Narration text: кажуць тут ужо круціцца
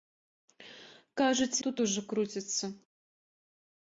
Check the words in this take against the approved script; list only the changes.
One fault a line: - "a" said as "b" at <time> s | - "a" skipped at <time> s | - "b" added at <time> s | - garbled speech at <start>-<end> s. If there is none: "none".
none